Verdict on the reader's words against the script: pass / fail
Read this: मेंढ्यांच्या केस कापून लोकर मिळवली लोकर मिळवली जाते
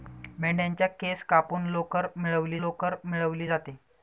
pass